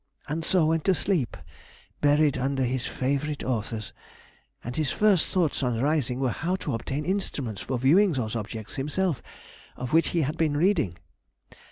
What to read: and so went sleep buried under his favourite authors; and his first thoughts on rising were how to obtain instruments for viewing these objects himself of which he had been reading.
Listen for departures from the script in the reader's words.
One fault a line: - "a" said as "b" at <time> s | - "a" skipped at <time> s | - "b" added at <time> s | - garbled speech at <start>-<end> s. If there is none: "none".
- "to" added at 0.8 s
- "these" said as "those" at 8.1 s